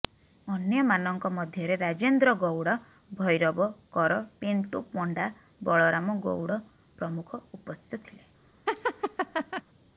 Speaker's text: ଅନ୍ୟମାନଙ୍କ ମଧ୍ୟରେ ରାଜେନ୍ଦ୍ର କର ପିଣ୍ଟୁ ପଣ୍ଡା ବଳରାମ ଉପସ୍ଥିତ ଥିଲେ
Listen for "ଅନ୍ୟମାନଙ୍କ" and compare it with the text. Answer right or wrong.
right